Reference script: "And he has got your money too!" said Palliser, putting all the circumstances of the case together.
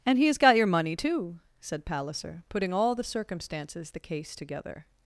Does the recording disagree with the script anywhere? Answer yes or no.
yes